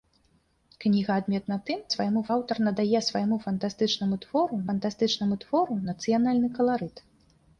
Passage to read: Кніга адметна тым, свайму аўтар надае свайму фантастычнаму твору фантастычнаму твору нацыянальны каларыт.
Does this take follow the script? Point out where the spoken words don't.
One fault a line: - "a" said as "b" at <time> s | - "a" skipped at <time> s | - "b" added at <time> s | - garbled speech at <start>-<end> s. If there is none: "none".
none